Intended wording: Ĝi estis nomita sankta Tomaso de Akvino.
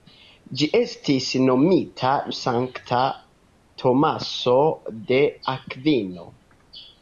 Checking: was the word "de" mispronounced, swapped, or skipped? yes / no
no